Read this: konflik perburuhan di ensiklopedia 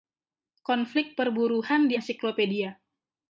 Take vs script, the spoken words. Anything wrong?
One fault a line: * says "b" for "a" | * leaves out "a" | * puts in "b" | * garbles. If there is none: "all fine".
all fine